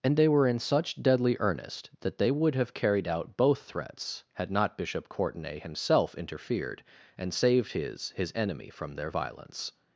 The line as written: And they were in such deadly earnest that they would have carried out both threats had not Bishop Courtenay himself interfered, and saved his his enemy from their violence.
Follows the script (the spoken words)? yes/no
yes